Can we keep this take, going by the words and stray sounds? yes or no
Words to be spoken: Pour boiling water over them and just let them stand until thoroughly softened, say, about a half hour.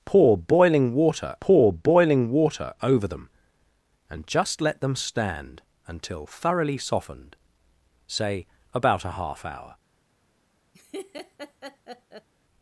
no